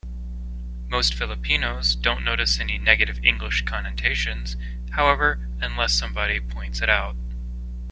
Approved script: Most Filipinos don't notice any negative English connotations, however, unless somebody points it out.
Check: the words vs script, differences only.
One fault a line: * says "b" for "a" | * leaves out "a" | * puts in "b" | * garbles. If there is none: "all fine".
all fine